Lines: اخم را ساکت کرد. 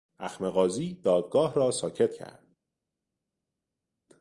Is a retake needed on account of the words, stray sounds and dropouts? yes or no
yes